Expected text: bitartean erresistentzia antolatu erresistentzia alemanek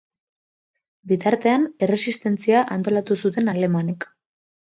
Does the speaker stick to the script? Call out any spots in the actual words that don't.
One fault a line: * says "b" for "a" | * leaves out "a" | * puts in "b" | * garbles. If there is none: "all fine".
* says "zuten" for "erresistentzia"